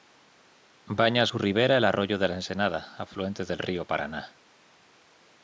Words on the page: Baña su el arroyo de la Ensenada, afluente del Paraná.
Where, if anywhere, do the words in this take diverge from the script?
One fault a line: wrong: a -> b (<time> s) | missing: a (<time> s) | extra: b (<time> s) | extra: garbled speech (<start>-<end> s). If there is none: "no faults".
extra: ribera (1.4 s)
extra: río (3.6 s)